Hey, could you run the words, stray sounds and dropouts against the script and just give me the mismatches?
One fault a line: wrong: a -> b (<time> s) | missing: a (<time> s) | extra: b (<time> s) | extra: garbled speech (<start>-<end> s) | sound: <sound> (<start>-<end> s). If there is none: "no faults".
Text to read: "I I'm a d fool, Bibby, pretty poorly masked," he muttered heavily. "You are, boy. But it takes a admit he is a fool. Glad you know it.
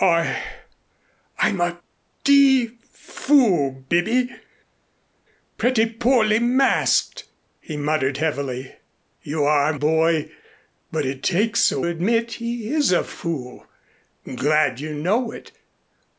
no faults